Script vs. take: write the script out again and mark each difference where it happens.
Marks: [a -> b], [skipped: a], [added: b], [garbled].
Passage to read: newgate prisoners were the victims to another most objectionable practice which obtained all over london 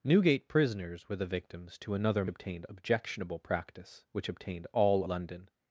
newgate prisoners were the victims to another [most -> obtained] objectionable practice which obtained all [skipped: over] london